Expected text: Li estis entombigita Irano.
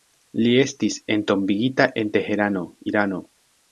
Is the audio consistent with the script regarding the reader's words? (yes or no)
no